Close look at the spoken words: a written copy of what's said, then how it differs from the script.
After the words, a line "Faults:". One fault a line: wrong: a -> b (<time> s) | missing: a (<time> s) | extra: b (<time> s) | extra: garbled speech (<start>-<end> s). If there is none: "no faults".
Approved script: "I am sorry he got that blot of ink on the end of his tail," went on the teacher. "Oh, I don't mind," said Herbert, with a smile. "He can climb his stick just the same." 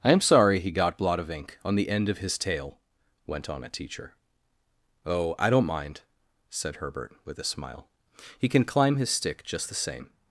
"I am sorry he got blot of ink on the end of his tail," went on a teacher. "Oh, I don't mind," said Herbert, with a smile. "He can climb his stick just the same."
Faults:
missing: that (1.0 s)
wrong: the -> a (3.6 s)